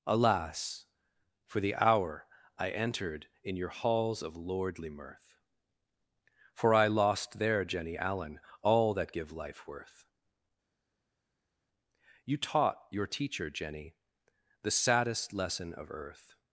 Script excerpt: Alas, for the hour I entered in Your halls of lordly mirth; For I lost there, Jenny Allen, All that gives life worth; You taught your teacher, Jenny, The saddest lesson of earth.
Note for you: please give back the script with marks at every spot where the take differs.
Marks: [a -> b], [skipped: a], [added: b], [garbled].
Alas, for the hour I entered in Your halls of lordly mirth; For I lost there, Jenny Allen, All that [gives -> give] life worth; You taught your teacher, Jenny, The saddest lesson of earth.